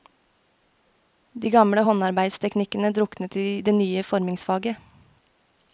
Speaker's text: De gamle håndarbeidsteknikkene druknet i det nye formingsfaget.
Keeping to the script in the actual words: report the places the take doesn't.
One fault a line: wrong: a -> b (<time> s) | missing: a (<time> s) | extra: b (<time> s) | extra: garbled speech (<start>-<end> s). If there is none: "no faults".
no faults